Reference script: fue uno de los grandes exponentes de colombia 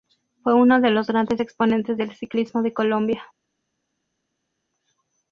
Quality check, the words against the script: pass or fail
fail